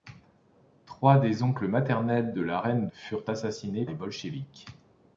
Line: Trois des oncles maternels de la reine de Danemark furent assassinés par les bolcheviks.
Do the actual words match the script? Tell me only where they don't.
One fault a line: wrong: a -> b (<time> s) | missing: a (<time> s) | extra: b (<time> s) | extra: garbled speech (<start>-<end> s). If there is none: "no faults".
missing: de Danemark (2.9 s)
missing: par (3.9 s)